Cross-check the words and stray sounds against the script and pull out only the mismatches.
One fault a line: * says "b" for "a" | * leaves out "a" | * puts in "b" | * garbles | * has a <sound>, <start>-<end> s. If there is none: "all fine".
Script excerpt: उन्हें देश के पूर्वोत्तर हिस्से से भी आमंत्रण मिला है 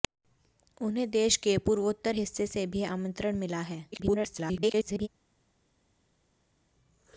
* garbles